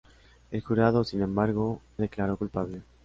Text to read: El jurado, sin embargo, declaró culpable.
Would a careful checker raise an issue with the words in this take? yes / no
no